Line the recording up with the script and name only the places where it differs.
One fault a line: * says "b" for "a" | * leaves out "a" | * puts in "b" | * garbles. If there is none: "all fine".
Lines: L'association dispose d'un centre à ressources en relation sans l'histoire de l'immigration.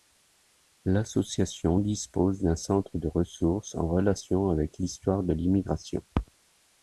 * says "de" for "à"
* says "avec" for "sans"